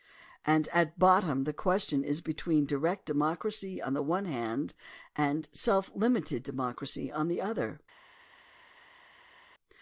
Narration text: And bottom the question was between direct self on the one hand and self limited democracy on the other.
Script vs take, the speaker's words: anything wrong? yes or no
yes